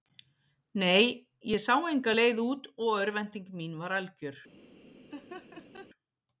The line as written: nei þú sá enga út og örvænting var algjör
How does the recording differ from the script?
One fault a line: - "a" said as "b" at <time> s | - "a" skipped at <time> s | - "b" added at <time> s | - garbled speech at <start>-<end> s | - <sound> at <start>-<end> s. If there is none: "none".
- "þú" said as "ég" at 1.5 s
- "leið" added at 2.2 s
- "mín" added at 3.6 s
- laugh at 5.1-5.9 s